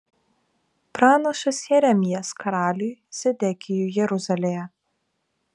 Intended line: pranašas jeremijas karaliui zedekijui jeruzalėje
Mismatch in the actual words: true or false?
false